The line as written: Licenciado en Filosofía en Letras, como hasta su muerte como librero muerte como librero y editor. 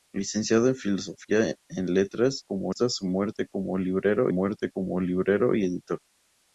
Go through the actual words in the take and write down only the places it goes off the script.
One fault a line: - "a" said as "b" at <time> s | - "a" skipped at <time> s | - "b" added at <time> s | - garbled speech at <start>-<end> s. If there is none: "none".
none